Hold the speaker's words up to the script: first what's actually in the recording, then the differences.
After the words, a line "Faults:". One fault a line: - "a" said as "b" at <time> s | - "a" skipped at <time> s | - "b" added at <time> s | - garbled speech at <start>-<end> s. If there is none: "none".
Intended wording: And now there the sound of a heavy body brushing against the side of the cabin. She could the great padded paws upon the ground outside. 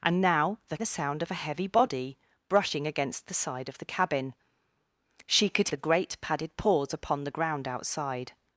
And now there the sound of a heavy body brushing against the side of the cabin. She could the great padded paws upon the ground outside.
Faults:
none